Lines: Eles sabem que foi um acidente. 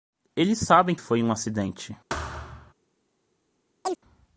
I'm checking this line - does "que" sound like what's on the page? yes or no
no